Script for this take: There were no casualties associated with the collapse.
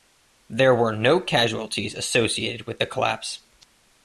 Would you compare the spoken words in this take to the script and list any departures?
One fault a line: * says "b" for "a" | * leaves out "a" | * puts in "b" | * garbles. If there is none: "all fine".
all fine